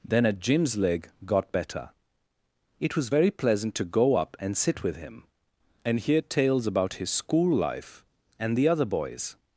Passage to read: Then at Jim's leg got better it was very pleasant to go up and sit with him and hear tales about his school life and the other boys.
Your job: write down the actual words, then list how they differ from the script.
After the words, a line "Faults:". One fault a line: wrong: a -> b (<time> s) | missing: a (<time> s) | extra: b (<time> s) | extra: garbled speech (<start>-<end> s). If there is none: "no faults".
Then at Jim's leg got better it was very pleasant to go up and sit with him and hear tales about his school life and the other boys.
Faults:
no faults